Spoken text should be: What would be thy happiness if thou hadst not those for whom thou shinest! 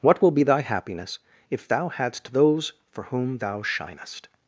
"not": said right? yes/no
no